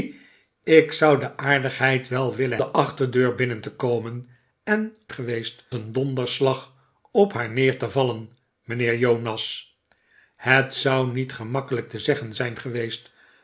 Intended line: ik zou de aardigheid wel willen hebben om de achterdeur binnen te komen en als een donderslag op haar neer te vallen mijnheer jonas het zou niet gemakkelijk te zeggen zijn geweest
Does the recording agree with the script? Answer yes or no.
no